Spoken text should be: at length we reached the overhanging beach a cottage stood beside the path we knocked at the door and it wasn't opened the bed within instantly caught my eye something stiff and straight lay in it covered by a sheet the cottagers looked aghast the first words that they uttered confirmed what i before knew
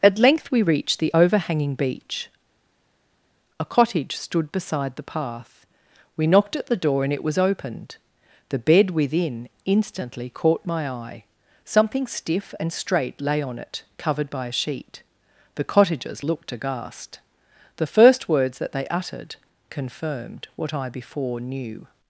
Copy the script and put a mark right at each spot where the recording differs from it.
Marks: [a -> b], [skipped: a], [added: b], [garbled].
at length we reached the overhanging beach a cottage stood beside the path we knocked at the door and it [wasn't -> was] opened the bed within instantly caught my eye something stiff and straight lay [in -> on] it covered by a sheet the cottagers looked aghast the first words that they uttered confirmed what i before knew